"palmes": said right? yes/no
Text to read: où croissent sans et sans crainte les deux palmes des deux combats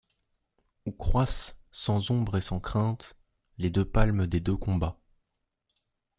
yes